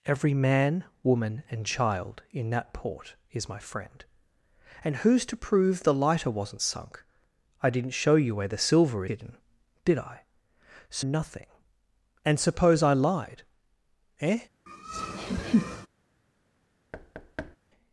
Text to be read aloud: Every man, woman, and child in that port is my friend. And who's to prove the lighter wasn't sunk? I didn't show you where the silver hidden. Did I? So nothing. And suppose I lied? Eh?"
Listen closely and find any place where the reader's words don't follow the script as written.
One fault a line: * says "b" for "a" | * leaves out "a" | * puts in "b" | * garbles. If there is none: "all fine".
all fine